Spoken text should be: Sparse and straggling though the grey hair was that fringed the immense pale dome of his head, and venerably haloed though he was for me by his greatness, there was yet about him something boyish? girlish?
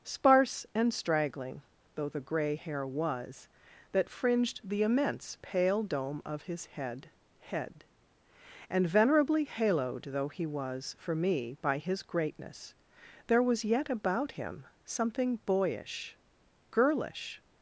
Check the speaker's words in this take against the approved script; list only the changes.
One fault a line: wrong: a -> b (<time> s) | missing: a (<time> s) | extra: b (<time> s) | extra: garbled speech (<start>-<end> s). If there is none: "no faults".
extra: head (7.4 s)